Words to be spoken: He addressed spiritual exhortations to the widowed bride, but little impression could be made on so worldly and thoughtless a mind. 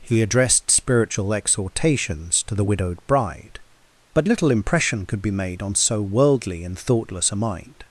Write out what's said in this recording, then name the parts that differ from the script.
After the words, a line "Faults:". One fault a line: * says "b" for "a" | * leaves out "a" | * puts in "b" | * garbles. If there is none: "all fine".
He addressed spiritual exhortations to the widowed bride, but little impression could be made on so worldly and thoughtless a mind.
Faults:
all fine